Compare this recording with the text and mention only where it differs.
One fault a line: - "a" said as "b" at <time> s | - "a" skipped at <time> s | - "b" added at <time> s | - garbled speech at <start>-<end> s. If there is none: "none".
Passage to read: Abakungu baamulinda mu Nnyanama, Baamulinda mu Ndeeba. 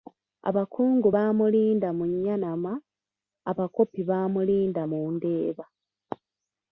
- "Abakopi" added at 3.5 s